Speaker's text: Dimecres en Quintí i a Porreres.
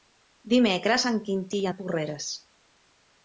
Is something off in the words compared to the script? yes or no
no